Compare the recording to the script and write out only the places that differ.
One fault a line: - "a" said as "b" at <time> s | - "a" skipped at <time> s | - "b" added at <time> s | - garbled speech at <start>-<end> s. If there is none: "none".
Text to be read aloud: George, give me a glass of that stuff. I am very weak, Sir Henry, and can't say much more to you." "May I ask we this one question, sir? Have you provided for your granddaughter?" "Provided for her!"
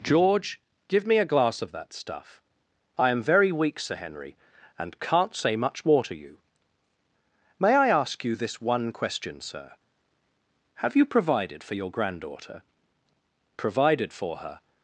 - "we" said as "you" at 8.2 s